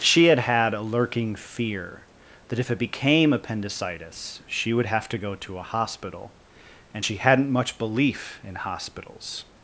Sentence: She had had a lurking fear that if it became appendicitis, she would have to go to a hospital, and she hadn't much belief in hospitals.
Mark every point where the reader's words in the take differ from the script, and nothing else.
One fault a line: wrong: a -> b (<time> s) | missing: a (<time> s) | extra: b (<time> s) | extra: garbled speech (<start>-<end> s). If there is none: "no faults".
no faults